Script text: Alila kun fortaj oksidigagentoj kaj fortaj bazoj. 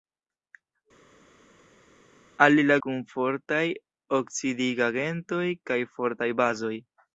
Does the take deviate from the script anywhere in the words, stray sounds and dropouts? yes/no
no